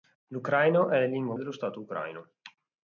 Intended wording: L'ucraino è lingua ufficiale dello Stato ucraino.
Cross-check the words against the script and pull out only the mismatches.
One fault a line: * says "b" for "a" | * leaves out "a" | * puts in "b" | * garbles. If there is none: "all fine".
* leaves out "ufficiale"